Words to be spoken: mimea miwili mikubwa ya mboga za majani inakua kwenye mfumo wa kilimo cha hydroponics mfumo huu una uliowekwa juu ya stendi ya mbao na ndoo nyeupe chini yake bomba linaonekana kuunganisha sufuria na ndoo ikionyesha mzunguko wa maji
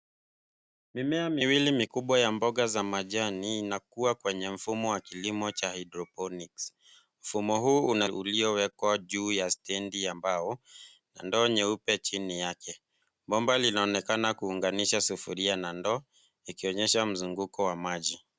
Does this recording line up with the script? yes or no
yes